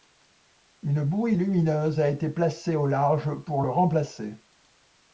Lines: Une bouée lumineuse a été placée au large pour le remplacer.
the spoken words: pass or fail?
pass